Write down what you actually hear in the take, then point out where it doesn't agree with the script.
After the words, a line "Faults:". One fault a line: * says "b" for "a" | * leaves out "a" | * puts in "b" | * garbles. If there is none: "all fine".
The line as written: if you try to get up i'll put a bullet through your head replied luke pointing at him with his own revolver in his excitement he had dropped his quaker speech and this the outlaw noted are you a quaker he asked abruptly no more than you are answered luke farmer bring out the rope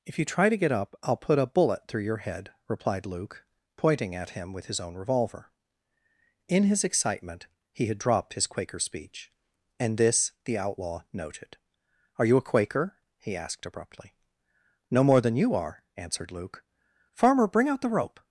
if you try to get up i'll put a bullet through your head replied luke pointing at him with his own revolver in his excitement he had dropped his quaker speech and this the outlaw noted are you a quaker he asked abruptly no more than you are answered luke farmer bring out the rope
Faults:
all fine